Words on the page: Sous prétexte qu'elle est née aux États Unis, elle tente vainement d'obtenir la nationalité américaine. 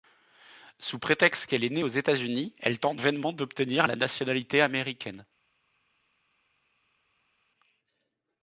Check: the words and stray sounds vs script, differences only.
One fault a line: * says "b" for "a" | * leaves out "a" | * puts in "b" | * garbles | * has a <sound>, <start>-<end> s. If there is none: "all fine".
all fine